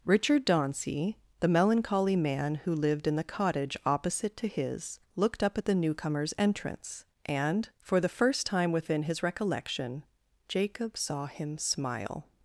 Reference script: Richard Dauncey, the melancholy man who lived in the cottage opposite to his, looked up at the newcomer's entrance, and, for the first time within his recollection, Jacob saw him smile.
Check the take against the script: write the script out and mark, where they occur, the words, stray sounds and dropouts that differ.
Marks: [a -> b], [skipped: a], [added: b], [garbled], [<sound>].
Richard Dauncey, the melancholy man who lived in the cottage opposite to his, looked up at the newcomer's entrance, and, for the first time within his recollection, Jacob saw him smile.